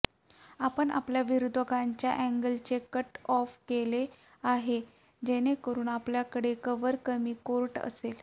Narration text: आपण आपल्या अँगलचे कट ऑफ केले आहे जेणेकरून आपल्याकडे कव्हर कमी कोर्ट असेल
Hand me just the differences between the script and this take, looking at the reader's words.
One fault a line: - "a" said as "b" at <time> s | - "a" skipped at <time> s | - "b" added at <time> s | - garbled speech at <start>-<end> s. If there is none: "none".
- "विरोधकांच्या" added at 1.2 s